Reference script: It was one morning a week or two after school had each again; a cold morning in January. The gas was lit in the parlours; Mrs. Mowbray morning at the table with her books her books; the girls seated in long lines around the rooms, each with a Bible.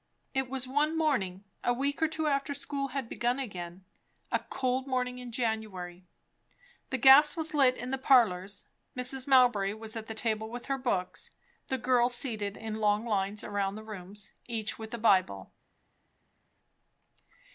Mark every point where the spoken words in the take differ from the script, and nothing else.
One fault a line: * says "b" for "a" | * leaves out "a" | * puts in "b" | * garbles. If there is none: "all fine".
* says "begun" for "each"
* says "was" for "morning"
* leaves out "her books"